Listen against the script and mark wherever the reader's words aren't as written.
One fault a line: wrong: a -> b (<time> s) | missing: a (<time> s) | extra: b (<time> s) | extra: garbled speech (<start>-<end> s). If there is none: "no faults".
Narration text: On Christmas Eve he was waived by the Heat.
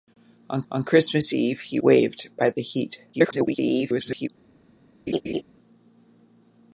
extra: on (0.7 s)
missing: was (1.8 s)
extra: garbled speech (3.1-4.3 s)